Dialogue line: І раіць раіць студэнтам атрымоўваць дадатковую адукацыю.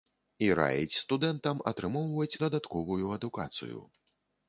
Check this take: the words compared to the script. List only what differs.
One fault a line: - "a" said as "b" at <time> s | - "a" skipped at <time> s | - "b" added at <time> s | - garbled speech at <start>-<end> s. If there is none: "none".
- "раіць" skipped at 1.0 s